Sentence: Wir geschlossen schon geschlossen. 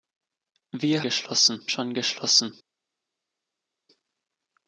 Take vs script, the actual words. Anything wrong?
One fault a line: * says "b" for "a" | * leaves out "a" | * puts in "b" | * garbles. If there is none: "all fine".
all fine